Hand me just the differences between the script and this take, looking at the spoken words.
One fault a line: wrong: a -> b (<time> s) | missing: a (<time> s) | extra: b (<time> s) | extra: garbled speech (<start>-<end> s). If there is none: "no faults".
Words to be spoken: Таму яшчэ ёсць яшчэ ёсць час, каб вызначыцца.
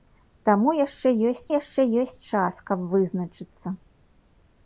no faults